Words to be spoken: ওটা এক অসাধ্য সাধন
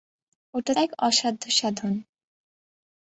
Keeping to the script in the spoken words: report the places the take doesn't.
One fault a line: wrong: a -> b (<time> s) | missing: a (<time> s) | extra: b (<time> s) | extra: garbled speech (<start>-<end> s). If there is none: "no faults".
no faults